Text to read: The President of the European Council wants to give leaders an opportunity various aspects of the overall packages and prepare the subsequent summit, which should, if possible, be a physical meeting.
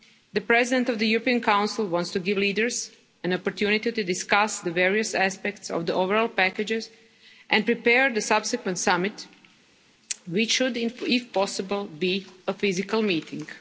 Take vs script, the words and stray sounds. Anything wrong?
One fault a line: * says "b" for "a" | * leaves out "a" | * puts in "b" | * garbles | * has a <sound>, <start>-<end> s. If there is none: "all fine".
* puts in "to discuss the"